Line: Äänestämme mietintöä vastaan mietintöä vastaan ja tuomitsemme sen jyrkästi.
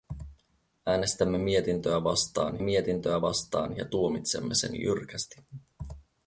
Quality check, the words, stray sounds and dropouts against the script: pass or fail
pass